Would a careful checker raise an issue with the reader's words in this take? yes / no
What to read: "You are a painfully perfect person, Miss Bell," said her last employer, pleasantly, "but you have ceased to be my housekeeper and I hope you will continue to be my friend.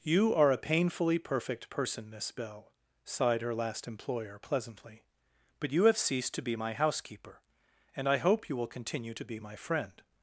yes